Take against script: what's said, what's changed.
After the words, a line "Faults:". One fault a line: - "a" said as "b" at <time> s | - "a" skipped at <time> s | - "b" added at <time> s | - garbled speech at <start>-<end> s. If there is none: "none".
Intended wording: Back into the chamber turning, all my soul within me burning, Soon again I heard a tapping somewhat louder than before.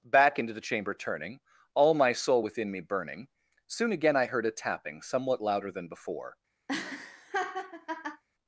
Back into the chamber turning, all my soul within me burning, Soon again I heard a tapping somewhat louder than before.
Faults:
none